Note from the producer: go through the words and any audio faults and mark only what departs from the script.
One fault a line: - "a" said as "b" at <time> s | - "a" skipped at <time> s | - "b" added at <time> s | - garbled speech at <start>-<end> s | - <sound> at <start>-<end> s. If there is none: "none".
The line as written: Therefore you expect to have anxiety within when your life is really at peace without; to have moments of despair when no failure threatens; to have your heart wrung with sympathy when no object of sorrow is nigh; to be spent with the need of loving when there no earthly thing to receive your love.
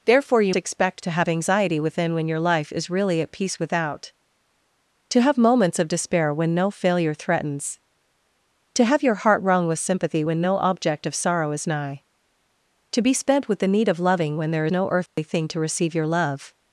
- dropout at 15.1-15.2 s